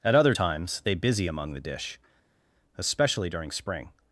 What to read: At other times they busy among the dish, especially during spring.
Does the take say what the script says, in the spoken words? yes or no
yes